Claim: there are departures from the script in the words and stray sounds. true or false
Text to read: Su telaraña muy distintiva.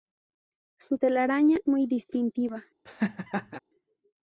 true